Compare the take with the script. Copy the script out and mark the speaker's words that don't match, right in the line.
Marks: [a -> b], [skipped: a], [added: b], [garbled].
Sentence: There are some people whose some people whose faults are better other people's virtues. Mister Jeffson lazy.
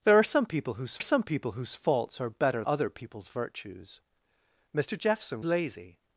There are some people whose some people whose faults are better other people's virtues. Mister Jeffson lazy.